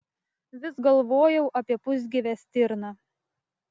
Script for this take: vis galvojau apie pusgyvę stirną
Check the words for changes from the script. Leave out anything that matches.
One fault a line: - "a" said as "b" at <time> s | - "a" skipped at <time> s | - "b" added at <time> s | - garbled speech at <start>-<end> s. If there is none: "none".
none